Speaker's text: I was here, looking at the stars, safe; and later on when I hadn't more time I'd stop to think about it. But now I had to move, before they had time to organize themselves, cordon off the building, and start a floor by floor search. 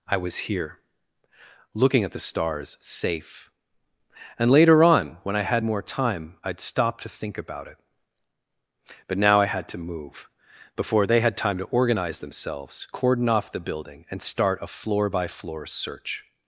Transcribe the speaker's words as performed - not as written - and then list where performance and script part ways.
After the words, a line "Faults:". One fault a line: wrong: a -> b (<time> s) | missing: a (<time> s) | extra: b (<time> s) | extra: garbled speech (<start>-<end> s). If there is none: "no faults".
I was here, looking at the stars, safe; and later on when I had more time I'd stop to think about it. But now I had to move, before they had time to organize themselves, cordon off the building, and start a floor by floor search.
Faults:
wrong: hadn't -> had (5.4 s)